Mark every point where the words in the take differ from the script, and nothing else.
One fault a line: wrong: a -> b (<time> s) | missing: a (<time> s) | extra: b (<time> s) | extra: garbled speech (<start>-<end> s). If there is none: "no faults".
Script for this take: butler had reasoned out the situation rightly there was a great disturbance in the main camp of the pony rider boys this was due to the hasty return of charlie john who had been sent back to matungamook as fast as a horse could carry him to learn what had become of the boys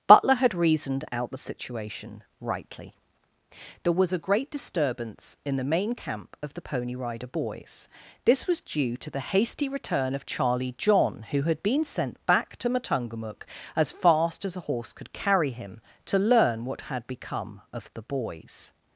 no faults